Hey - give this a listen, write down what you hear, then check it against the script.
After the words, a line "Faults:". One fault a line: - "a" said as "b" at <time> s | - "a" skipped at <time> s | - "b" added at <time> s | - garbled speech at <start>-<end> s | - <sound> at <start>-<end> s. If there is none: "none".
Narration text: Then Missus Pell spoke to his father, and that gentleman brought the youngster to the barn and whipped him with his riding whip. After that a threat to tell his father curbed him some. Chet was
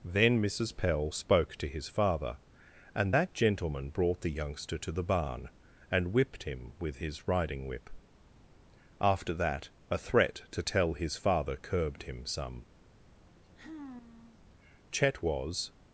Then Missus Pell spoke to his father, and that gentleman brought the youngster to the barn and whipped him with his riding whip. After that a threat to tell his father curbed him some. Chet was
Faults:
- sigh at 13.3-14.4 s